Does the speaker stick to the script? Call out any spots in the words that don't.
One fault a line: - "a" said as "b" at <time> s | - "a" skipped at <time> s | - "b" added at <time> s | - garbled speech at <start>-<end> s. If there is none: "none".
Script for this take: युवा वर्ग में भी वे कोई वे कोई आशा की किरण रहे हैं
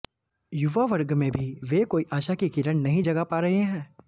- "वे कोई" skipped at 2.0 s
- "नहीं जगा पा" added at 2.8 s